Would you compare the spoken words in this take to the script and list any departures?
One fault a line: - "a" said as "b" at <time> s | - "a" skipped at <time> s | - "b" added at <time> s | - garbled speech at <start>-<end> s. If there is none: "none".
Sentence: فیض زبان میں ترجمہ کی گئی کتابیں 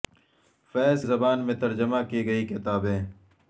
none